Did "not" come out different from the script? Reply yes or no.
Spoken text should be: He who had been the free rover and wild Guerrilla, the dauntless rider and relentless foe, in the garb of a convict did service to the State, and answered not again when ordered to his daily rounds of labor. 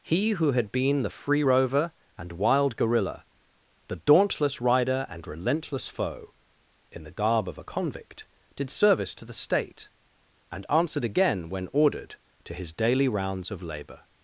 yes